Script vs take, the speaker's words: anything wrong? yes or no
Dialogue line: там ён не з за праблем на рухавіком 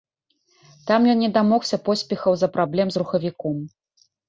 yes